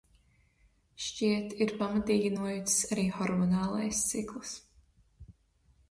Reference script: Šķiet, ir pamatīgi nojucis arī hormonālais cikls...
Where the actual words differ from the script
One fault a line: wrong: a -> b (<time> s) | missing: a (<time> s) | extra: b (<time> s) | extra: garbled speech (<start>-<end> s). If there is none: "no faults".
no faults